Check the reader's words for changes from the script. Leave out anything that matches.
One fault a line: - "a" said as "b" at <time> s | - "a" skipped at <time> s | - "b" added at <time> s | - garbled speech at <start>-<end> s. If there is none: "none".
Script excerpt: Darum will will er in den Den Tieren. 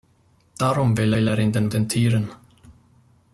none